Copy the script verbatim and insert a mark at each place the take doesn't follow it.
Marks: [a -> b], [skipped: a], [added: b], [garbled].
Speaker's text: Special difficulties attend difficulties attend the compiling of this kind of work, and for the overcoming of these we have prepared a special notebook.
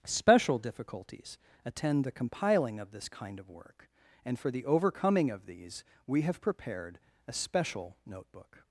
Special difficulties attend [skipped: difficulties attend] the compiling of this kind of work, and for the overcoming of these we have prepared a special notebook.